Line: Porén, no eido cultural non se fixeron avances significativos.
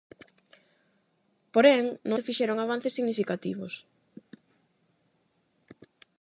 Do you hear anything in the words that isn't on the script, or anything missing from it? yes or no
yes